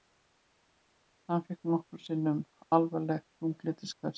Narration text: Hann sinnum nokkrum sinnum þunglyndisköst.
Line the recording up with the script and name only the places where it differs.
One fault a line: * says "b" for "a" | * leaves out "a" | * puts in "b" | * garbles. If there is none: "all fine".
* says "fékk" for "sinnum"
* puts in "alvarleg"